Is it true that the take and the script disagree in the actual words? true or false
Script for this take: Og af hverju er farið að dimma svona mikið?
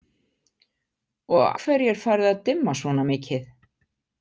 true